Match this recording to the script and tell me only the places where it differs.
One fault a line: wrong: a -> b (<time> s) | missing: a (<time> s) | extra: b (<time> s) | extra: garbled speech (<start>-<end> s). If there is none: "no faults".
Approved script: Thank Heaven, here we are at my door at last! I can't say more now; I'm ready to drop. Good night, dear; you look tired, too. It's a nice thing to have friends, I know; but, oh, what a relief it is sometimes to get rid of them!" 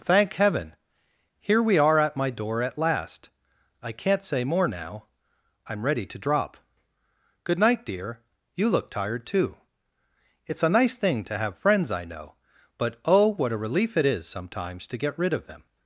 no faults